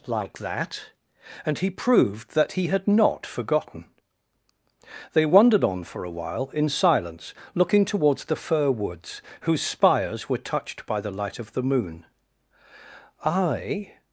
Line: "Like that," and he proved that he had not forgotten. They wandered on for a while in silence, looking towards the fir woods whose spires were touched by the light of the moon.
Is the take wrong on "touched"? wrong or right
right